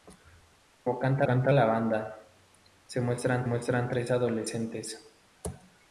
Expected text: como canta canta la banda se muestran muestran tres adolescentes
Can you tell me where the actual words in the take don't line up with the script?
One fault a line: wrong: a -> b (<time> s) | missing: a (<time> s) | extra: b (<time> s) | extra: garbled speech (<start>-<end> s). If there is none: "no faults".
no faults